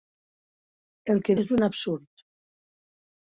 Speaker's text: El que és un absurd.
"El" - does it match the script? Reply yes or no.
yes